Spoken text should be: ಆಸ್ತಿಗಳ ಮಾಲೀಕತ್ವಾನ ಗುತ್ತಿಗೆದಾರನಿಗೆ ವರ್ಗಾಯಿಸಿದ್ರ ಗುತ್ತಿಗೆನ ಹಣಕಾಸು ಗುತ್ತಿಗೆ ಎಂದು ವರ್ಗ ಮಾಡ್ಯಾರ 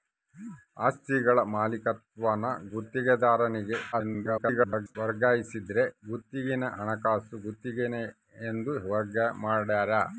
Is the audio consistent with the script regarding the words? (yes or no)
no